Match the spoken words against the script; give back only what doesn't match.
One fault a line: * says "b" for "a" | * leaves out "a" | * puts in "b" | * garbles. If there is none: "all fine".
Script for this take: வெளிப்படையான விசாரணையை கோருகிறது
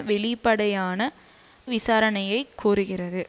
all fine